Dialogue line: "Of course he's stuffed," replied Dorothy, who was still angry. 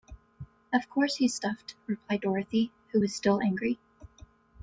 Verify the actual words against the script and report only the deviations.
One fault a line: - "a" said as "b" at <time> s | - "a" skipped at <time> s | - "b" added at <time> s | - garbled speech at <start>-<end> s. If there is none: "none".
none